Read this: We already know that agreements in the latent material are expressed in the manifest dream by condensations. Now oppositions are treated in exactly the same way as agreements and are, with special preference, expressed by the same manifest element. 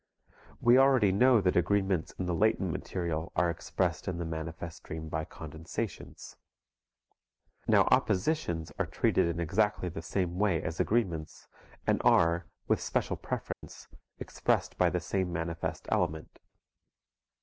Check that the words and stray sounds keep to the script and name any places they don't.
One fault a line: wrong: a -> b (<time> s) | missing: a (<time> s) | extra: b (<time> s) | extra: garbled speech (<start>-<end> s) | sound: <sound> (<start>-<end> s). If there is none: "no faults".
sound: dropout (13.5-13.6 s)